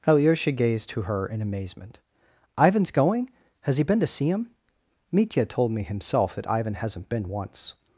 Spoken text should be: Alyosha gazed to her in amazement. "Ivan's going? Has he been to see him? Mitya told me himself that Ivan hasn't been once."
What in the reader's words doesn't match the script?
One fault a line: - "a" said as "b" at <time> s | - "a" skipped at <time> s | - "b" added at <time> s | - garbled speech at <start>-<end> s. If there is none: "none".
none